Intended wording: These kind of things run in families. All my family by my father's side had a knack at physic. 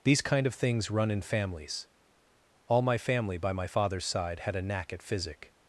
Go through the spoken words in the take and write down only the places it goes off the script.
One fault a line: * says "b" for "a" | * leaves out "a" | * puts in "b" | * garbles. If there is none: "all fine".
all fine